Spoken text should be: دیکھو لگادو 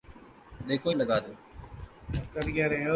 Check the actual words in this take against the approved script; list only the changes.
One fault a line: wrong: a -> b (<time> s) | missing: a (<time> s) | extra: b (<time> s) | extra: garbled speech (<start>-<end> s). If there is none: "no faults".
no faults